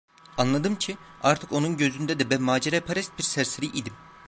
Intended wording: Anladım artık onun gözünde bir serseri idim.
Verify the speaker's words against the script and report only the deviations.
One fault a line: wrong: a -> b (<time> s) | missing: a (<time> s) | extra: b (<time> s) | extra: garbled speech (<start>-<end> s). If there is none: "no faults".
extra: ki (0.8 s)
extra: de ben maceraperest (2.2 s)